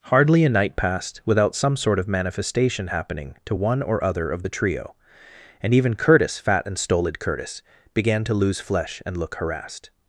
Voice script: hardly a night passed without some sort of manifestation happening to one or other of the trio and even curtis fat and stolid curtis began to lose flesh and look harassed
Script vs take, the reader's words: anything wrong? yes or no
no